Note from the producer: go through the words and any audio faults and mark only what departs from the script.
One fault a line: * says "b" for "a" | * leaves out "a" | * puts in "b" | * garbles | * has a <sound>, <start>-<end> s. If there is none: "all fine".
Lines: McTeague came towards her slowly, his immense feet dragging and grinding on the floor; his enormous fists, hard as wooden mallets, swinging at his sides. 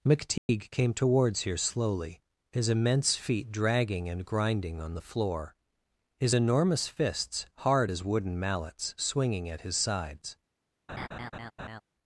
* has a dropout, 0.4-0.5 s
* says "here" for "her"
* has a laugh, 10.9-11.8 s